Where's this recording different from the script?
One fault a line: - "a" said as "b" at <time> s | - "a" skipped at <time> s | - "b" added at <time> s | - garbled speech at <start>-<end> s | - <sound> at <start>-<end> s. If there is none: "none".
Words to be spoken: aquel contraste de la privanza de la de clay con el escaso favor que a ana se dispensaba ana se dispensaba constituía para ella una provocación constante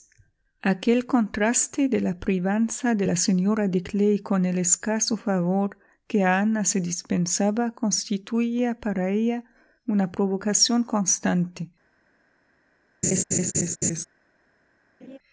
- "señora" added at 3.2 s
- "ana se dispensaba" skipped at 7.7 s
- laugh at 13.0-14.0 s
- laugh at 15.0-15.2 s